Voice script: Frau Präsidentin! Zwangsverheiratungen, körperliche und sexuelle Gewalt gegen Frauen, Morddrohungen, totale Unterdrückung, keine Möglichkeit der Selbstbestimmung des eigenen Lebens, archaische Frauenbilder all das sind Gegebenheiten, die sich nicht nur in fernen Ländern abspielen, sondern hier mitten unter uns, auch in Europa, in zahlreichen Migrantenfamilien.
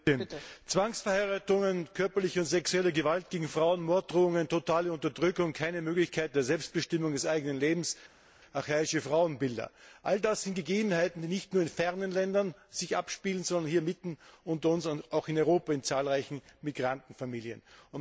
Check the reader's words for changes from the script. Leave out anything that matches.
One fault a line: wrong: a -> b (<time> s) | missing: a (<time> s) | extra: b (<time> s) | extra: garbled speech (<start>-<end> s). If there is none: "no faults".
no faults